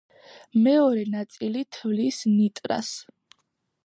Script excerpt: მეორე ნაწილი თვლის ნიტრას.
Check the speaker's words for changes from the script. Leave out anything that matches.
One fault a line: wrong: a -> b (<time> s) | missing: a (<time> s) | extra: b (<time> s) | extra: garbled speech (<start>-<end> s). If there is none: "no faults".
no faults